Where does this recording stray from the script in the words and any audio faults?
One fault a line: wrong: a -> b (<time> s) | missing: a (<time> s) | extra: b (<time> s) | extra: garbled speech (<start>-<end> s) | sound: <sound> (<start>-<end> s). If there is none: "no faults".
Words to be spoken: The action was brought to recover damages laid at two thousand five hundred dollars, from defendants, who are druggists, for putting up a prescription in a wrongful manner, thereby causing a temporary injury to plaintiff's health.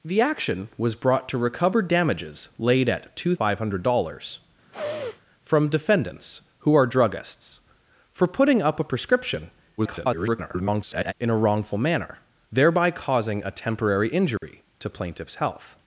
missing: thousand (3.4 s)
sound: sniff (4.7-5.2 s)
extra: garbled speech (9.8-11.1 s)
sound: dropout (14.4-14.4 s)